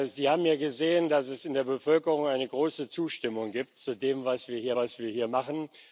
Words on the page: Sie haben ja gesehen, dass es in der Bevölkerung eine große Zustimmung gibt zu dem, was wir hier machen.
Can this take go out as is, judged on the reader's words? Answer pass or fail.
fail